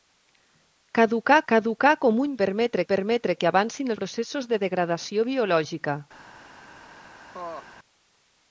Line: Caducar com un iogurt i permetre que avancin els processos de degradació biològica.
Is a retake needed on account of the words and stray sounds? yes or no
yes